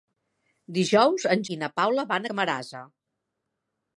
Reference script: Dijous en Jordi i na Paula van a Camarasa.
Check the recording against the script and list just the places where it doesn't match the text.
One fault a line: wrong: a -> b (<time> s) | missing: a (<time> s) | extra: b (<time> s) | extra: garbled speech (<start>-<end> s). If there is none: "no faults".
missing: Jordi (1.4 s)
missing: a (2.3 s)